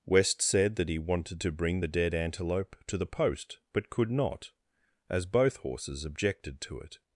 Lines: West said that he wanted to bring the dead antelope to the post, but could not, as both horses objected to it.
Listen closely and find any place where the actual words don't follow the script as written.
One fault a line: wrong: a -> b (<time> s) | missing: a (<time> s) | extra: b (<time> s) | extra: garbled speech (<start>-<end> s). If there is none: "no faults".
no faults